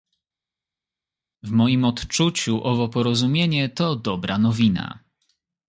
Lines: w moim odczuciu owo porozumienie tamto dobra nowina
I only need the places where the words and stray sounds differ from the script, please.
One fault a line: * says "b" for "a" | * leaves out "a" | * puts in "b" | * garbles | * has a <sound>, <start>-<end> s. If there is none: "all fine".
* says "to" for "tamto"